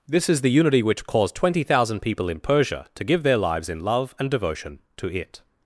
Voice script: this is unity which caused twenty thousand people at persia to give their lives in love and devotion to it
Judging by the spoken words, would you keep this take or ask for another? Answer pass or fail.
fail